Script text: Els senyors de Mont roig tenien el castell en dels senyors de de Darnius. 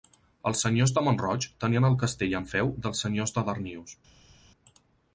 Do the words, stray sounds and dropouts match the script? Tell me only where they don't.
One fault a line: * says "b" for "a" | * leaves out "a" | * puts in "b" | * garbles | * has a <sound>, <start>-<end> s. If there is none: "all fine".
* puts in "feu"
* leaves out "de"